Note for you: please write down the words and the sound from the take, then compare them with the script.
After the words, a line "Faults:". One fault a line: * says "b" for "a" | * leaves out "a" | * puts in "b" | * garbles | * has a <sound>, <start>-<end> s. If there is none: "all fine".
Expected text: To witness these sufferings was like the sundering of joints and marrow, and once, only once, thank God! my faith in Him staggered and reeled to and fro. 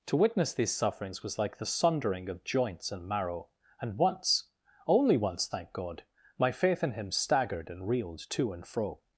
To witness these sufferings was like the sundering of joints and marrow, and once, only once, thank God! my faith in Him staggered and reeled to and fro.
Faults:
all fine